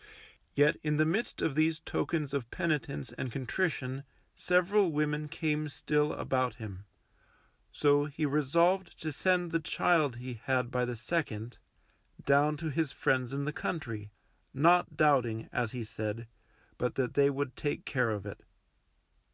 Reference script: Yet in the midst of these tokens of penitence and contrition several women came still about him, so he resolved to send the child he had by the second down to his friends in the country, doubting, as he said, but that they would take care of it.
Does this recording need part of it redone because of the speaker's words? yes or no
yes